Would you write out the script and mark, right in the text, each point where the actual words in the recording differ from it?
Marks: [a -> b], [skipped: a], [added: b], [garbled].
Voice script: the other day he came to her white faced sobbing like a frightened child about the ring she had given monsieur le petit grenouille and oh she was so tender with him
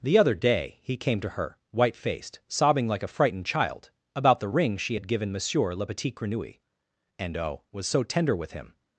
the other day he came to her white faced sobbing like a frightened child about the ring she had given monsieur le petit grenouille and oh [skipped: she] was so tender with him